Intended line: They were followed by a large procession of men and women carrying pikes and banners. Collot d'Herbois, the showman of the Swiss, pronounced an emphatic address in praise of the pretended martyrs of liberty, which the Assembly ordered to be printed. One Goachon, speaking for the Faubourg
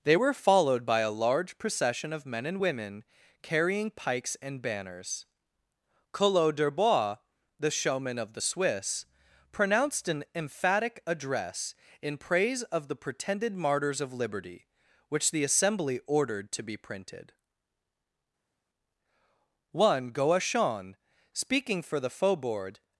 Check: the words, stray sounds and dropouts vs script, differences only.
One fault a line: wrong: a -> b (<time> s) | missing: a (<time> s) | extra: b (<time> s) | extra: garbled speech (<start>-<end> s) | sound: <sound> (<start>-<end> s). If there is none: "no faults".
no faults